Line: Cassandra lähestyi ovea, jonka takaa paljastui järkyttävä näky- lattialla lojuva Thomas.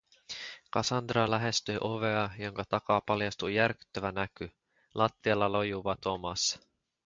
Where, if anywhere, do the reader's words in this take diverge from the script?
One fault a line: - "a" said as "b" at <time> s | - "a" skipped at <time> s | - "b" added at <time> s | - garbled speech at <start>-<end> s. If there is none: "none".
none